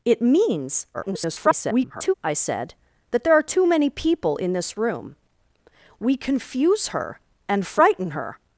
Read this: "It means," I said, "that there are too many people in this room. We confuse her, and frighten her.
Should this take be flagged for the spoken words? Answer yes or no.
yes